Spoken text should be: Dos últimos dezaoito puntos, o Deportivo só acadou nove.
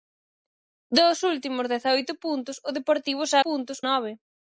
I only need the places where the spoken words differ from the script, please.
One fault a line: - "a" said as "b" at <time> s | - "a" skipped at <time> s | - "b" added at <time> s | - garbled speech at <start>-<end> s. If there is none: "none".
- "acadou" said as "puntos" at 3.4 s